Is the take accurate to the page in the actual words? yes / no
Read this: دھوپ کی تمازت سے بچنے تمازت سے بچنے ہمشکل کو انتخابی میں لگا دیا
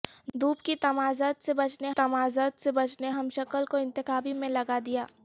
yes